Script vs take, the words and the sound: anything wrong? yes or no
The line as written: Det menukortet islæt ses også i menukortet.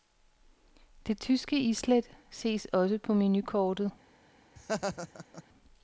yes